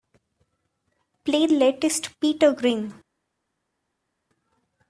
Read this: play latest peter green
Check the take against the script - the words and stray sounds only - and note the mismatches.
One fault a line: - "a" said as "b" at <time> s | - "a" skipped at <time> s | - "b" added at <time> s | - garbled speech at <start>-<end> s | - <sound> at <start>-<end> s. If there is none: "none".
none